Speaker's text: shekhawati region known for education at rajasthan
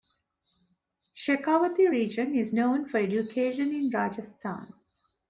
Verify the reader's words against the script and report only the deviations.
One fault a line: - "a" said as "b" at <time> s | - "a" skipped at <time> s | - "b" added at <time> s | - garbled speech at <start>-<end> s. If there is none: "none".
- "is" added at 2.3 s
- "at" said as "in" at 3.7 s